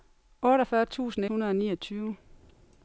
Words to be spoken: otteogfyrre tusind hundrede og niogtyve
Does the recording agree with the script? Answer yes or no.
yes